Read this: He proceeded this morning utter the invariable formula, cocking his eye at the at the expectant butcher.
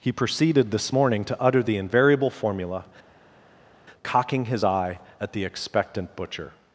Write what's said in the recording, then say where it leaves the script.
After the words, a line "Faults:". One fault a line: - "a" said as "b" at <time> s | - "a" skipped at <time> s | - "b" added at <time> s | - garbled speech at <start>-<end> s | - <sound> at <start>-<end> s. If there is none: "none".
He proceeded this morning to utter the invariable formula, cocking his eye at the expectant butcher.
Faults:
- "to" added at 1.2 s
- "at the" skipped at 5.4 s